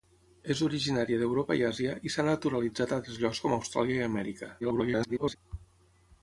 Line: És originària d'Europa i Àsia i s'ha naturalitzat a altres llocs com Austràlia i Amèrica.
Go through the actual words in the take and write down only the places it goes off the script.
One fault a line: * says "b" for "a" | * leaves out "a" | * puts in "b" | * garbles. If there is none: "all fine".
* garbles